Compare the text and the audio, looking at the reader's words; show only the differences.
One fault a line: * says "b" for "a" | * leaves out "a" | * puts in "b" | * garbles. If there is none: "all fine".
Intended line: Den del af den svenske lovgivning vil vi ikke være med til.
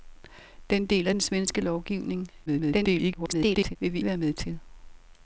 * garbles
* leaves out "ikke"